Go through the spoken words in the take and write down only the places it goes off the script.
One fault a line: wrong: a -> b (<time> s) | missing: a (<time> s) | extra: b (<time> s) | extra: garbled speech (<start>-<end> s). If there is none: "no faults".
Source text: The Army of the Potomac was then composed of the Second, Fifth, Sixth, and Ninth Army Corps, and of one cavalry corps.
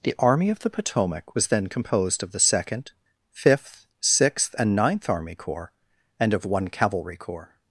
no faults